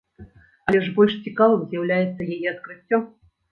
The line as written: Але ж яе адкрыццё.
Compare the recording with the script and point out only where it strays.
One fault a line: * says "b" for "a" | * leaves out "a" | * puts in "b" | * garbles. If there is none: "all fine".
* puts in "больш цікавым з'яўляецца"